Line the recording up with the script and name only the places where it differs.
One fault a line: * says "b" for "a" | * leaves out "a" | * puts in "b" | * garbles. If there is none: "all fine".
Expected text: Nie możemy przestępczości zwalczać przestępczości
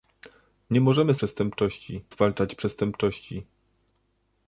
all fine